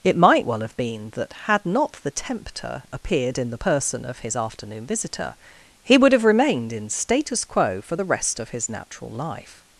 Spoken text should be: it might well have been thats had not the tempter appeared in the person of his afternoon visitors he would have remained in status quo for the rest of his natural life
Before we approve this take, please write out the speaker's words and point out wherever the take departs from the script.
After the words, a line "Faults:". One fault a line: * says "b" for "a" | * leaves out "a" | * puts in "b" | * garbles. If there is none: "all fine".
it might well have been that had not the tempter appeared in the person of his afternoon visitor he would have remained in status quo for the rest of his natural life
Faults:
* says "that" for "thats"
* says "visitor" for "visitors"